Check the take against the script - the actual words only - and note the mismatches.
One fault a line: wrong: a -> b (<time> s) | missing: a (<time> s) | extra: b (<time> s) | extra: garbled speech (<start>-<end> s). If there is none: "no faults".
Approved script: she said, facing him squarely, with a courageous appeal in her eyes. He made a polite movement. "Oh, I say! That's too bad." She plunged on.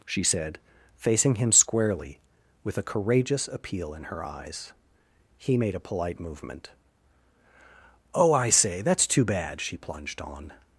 no faults